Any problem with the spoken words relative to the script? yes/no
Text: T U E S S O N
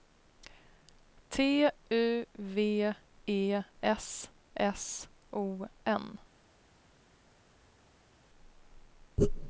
yes